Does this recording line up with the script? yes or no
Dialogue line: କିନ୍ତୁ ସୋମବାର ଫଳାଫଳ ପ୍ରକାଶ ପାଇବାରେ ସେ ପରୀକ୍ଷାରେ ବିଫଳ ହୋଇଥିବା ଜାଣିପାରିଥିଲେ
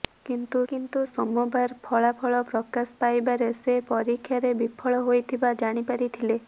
no